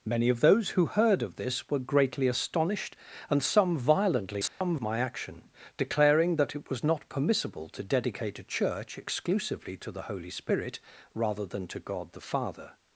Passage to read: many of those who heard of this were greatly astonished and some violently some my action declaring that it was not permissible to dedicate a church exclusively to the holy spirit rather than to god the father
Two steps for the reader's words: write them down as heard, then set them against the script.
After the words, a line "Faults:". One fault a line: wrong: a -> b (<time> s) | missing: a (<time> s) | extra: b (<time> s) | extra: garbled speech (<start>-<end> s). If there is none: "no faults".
many of those who heard of this were greatly astonished and some violently some my action declaring that it was not permissible to dedicate a church exclusively to the holy spirit rather than to god the father
Faults:
no faults